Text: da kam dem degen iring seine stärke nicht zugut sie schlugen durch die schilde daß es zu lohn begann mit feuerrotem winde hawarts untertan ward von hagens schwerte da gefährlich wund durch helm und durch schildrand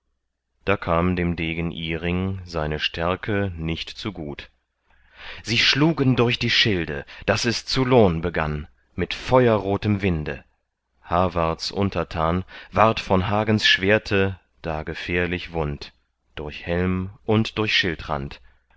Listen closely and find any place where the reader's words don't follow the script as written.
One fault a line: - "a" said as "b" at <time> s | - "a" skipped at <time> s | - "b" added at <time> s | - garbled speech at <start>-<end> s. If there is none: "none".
none